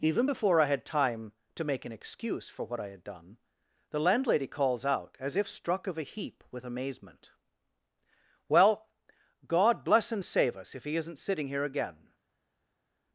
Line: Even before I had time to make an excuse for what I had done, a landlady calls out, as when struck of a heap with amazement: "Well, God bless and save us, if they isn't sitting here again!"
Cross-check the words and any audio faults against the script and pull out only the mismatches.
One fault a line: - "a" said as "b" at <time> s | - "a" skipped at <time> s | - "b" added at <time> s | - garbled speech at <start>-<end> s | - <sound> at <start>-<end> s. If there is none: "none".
- "a" said as "the" at 3.9 s
- "when" said as "if" at 5.4 s
- "they" said as "he" at 10.8 s